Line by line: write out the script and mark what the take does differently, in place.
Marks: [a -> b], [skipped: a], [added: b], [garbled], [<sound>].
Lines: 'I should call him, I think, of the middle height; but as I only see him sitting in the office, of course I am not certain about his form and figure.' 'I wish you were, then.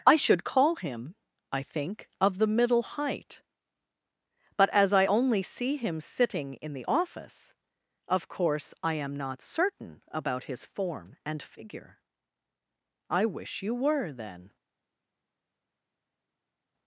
'I should call him, I think, of the middle height; but as I only see him sitting in the office, of course I am not certain about his form and figure.' 'I wish you were, then.